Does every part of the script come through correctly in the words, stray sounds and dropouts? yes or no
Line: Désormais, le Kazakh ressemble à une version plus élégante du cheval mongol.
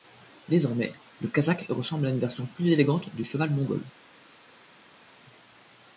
yes